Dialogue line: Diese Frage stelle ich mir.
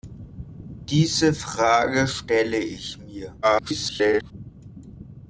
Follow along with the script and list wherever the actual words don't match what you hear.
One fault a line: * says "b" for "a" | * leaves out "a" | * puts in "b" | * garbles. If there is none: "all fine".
* garbles